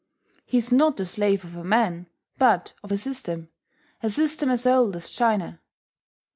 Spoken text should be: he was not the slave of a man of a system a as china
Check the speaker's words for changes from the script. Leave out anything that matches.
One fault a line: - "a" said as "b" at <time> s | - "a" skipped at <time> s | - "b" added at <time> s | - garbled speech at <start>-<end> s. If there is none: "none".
- "was" said as "is" at 0.6 s
- "but" added at 2.4 s
- "system as old" added at 4.1 s